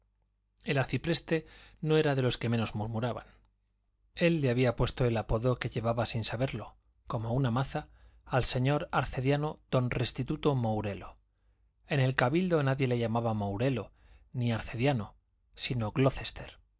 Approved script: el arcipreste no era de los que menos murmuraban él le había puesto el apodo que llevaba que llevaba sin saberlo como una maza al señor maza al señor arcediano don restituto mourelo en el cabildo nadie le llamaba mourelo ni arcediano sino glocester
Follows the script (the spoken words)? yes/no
no